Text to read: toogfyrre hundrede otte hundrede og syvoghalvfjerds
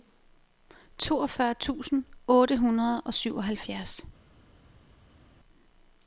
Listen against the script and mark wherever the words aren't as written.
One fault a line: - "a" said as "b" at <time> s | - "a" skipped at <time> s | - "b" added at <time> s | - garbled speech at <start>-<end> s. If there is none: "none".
- "hundrede" said as "tusind" at 1.5 s